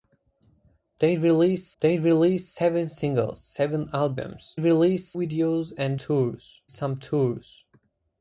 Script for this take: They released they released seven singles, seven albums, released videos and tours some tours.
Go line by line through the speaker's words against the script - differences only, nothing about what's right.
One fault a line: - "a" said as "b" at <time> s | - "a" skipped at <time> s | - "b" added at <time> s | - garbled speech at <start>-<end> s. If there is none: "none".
none